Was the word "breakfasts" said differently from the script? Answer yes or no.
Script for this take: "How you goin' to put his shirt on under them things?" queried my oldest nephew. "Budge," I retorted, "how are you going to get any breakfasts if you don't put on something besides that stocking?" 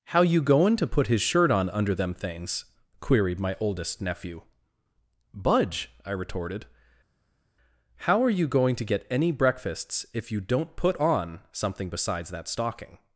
no